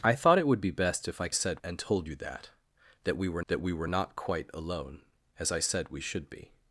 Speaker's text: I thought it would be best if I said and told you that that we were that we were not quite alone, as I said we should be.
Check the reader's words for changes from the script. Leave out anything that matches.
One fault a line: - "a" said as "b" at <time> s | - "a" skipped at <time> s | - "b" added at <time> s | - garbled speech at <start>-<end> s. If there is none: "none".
none